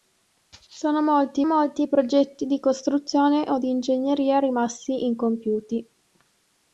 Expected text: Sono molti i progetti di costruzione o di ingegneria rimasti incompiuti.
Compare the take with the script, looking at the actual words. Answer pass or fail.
fail